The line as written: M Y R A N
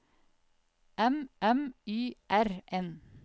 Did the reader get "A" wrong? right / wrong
wrong